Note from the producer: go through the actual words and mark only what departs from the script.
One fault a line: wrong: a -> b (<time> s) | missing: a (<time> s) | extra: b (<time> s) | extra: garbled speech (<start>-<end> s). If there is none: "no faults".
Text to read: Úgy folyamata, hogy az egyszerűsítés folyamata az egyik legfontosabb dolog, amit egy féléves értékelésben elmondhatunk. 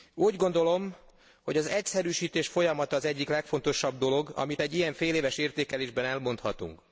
wrong: folyamata -> gondolom (0.3 s)
extra: ilyen (4.7 s)